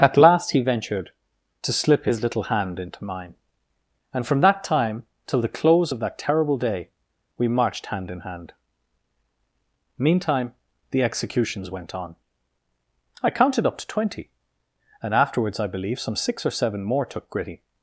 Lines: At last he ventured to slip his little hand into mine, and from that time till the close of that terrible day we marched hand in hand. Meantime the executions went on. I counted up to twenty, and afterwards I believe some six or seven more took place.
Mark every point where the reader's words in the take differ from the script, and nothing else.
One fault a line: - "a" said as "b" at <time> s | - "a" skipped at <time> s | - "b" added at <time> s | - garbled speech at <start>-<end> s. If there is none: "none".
- "place" said as "gritty" at 17.3 s